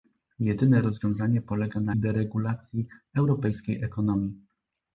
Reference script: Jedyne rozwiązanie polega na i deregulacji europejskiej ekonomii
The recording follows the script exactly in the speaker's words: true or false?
true